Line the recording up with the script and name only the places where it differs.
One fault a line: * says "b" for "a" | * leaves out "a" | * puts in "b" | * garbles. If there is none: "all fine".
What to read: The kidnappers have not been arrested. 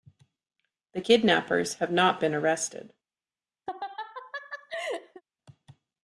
all fine